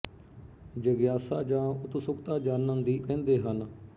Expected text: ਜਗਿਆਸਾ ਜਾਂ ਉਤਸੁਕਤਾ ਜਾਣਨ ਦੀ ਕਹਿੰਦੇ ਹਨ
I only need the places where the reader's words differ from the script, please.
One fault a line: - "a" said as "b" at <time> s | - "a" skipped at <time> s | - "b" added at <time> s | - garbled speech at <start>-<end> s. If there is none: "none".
none